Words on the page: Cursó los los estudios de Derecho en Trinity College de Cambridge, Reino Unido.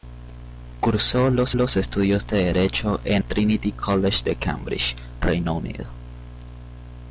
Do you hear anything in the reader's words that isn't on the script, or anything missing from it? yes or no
no